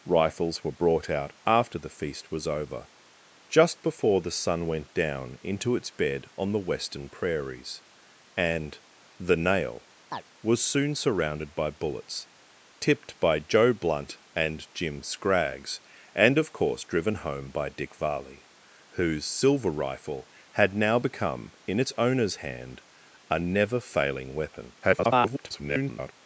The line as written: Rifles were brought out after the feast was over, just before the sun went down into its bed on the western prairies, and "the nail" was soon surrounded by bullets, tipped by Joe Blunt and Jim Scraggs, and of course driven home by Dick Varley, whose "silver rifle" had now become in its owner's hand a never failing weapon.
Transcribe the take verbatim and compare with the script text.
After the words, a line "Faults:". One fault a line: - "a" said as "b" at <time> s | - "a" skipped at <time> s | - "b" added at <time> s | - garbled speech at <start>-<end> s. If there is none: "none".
Rifles were brought out after the feast was over, just before the sun went down into its bed on the western prairies, and "the nail" was soon surrounded by bullets, tipped by Joe Blunt and Jim Scraggs, and of course driven home by Dick Varley, whose "silver rifle" had now become in its owner's hand a never failing weapon. [garbled]
Faults:
- garbled speech at 24.8-26.1 s